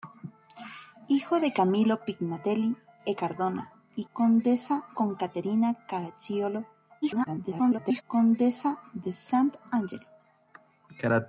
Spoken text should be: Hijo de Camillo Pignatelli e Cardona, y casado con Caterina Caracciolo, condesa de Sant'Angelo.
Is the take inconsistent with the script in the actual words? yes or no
yes